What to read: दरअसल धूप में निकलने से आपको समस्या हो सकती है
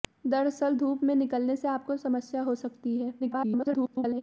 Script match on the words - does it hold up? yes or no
no